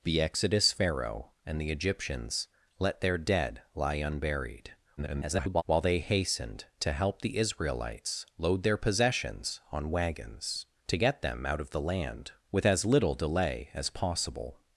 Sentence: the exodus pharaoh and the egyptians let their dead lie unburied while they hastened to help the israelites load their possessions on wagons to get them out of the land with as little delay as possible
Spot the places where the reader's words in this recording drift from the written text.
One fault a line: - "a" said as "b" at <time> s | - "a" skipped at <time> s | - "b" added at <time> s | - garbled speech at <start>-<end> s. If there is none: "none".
- garbled speech at 5.0-5.6 s